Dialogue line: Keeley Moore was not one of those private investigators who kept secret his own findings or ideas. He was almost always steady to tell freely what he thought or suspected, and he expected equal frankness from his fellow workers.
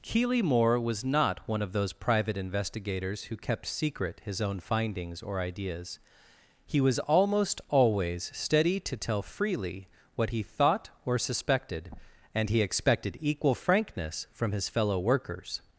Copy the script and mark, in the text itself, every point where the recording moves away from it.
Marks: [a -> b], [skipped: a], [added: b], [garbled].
Keeley Moore was not one of those private investigators who kept secret his own findings or ideas. He was almost always steady to tell freely what he thought or suspected, and he expected equal frankness from his fellow workers.